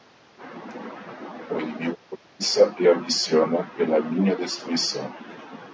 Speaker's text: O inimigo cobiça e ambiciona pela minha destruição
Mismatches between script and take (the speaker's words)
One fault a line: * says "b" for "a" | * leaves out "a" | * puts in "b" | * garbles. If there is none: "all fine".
all fine